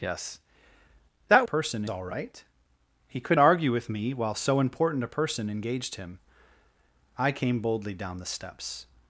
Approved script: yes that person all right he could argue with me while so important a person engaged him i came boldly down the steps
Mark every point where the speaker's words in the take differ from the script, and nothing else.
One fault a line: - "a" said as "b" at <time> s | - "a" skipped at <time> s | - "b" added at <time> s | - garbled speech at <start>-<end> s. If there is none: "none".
none